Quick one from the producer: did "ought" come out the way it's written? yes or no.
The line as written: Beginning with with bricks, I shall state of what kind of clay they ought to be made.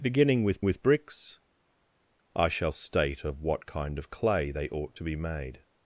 yes